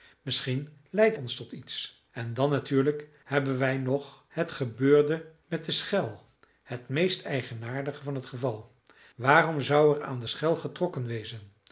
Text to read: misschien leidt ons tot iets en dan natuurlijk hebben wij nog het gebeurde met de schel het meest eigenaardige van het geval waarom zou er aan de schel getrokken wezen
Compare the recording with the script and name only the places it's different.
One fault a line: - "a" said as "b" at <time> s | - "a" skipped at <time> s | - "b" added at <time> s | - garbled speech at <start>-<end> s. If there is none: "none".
none